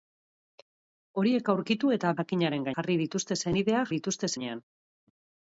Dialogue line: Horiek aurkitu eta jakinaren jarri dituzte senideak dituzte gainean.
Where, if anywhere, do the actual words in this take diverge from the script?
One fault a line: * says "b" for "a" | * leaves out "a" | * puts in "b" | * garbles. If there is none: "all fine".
all fine